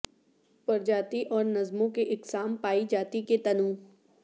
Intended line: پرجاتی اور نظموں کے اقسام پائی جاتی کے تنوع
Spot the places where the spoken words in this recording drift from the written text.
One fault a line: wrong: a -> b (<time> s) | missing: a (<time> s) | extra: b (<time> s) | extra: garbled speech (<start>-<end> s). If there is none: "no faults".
no faults